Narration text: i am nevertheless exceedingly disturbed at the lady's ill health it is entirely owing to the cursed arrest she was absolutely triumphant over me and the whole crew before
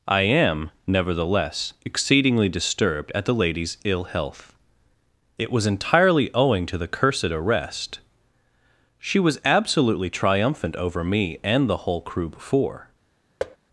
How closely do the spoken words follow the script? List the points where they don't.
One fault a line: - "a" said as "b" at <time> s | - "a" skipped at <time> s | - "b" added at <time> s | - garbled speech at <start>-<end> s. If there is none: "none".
- "is" said as "was" at 5.5 s